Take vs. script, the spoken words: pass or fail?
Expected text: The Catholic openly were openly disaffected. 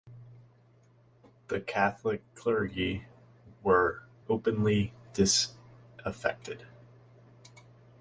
fail